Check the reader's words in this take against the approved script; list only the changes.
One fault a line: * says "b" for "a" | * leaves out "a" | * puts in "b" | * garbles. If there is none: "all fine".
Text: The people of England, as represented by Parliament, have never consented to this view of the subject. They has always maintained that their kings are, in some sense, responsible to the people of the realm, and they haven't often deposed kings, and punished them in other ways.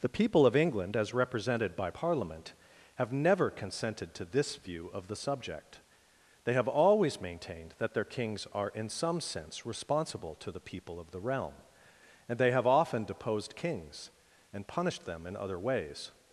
* says "have" for "has"
* says "have" for "haven't"